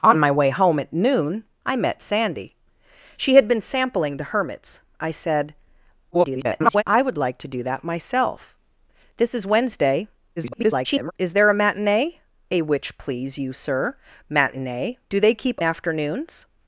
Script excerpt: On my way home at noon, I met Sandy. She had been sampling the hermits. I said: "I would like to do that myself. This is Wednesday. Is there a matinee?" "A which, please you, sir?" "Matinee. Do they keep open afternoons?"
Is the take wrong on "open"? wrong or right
wrong